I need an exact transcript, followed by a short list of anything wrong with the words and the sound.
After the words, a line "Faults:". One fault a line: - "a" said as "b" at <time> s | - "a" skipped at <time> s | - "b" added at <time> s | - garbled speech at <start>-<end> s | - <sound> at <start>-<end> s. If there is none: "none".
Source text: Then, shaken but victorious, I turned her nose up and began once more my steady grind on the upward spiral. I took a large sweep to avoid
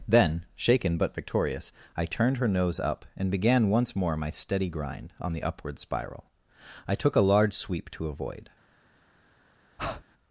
Then, shaken but victorious, I turned her nose up and began once more my steady grind on the upward spiral. I took a large sweep to avoid
Faults:
- breath at 9.8-10.0 s